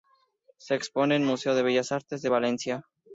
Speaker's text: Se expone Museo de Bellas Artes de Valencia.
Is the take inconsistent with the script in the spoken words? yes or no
yes